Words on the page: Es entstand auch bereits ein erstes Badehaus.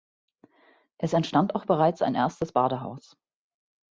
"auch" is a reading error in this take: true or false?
false